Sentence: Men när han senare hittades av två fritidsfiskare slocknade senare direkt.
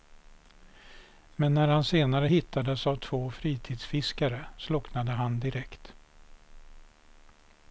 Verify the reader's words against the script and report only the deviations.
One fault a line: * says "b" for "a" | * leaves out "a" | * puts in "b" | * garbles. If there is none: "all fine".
* says "han" for "senare"